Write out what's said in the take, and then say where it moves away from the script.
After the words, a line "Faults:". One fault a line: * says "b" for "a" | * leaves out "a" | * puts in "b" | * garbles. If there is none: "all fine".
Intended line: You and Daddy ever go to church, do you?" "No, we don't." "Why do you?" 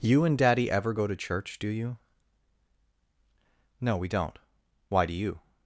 You and Daddy ever go to church, do you?" "No, we don't." "Why do you?"
Faults:
all fine